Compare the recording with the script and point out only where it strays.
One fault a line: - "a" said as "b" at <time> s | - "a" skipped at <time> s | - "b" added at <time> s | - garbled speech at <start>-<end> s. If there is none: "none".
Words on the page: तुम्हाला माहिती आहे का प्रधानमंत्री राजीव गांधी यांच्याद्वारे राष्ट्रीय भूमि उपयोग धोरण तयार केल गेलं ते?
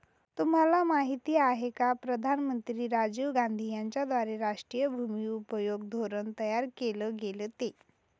none